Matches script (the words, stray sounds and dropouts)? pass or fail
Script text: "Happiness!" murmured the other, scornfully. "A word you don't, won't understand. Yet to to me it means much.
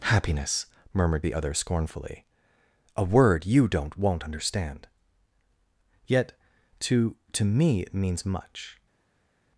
pass